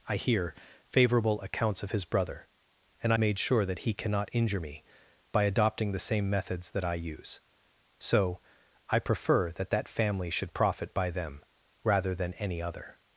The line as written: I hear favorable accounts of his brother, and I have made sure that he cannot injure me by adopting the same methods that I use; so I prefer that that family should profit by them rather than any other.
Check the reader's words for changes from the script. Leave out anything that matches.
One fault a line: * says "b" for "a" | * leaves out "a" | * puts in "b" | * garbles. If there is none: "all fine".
* leaves out "have"